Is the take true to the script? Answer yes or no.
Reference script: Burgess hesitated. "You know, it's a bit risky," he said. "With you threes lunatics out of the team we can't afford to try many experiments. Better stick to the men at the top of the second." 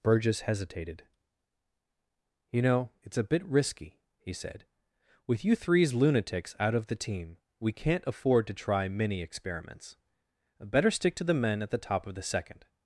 yes